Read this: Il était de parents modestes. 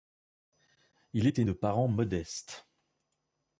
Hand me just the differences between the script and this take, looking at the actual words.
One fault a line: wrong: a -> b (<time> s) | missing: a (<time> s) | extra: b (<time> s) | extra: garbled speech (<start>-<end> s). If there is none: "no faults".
no faults